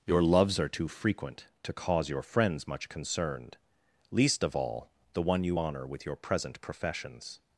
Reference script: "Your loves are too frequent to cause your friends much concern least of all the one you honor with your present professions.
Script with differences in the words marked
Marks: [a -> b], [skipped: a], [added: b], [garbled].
"Your loves are too frequent to cause your friends much [concern -> concerned] least of all the one you honor with your present professions.